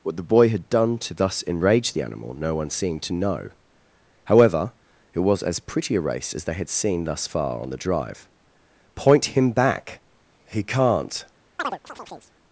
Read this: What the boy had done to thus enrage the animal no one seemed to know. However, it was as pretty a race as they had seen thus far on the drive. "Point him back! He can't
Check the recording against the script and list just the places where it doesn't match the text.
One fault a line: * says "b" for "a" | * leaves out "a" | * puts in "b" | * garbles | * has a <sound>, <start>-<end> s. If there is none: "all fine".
* has a chirp, 11.6-12.3 s